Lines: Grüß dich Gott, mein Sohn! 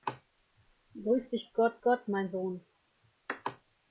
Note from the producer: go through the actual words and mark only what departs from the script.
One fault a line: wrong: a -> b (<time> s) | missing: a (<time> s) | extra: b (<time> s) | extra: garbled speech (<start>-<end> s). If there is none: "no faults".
extra: Gott (1.8 s)